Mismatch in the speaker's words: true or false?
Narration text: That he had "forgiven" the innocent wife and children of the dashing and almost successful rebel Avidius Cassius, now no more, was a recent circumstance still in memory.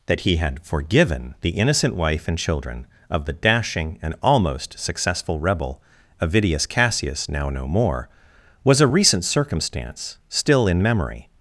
false